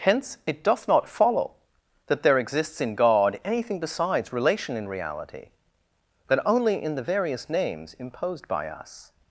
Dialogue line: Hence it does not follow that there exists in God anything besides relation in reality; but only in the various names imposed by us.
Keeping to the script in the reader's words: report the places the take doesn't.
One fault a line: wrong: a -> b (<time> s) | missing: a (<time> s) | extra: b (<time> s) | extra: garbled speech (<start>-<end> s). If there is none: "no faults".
wrong: does -> doth (0.6 s)